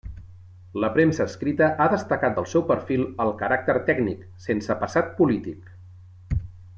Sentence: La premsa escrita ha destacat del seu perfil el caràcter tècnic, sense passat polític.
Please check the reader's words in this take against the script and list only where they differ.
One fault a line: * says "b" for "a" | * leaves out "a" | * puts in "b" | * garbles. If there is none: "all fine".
all fine